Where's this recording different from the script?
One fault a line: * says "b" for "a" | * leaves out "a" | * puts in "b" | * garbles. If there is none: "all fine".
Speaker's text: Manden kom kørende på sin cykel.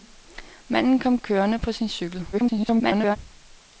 * garbles